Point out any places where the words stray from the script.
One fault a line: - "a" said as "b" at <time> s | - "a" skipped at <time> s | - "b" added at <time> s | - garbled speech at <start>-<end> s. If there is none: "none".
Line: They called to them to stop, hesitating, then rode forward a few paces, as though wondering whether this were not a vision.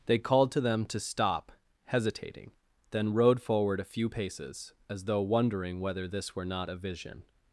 none